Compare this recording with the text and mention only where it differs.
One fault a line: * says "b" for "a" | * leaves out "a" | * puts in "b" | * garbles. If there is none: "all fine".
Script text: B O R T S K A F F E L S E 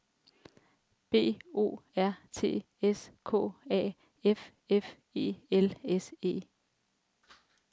all fine